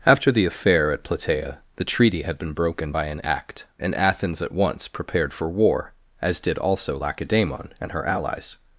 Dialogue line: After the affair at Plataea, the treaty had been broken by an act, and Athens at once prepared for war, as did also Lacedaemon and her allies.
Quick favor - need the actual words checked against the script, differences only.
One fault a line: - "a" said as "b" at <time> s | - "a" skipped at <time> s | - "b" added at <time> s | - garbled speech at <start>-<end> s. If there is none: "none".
none